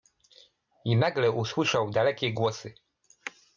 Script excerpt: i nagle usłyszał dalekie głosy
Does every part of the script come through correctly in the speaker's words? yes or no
yes